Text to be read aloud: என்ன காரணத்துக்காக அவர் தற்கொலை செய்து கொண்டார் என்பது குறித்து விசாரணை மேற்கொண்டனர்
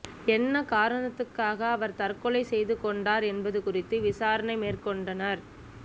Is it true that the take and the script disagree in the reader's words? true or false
false